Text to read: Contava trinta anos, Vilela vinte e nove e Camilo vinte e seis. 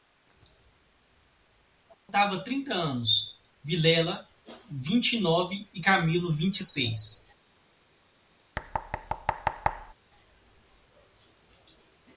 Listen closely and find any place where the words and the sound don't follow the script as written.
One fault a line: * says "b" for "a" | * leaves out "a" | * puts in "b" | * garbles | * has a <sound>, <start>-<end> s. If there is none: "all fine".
* has a dropout, 1.9-2.1 s
* has a thud, 8.6-9.9 s